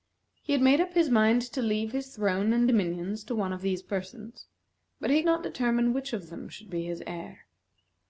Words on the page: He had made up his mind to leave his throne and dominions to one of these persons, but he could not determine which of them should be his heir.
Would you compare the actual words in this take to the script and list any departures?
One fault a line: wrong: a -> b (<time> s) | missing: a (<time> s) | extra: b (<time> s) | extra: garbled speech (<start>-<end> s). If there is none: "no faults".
missing: could (5.2 s)